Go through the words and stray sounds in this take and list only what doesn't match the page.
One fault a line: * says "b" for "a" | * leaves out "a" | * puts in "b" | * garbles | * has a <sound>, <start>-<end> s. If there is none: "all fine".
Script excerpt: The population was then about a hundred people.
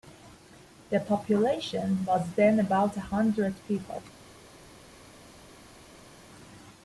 all fine